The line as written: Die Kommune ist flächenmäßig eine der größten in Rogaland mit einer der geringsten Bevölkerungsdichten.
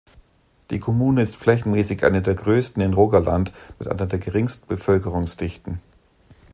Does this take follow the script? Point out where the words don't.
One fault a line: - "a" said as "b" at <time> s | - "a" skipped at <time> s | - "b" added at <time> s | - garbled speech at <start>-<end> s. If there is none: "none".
none